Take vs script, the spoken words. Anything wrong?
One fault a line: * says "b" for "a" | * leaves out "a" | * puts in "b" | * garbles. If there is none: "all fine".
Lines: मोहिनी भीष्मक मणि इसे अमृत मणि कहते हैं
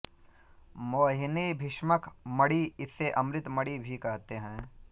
* puts in "भी"